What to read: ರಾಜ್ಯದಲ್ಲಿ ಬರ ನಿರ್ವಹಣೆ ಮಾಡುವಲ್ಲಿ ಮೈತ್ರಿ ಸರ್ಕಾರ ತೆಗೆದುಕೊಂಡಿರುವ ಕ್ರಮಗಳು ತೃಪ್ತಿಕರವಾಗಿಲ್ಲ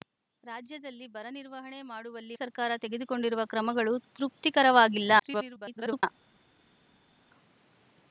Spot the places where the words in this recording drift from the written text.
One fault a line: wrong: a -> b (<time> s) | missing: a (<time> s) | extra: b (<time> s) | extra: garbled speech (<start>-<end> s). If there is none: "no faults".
missing: ಮೈತ್ರಿ (2.4 s)
extra: garbled speech (5.2-6.0 s)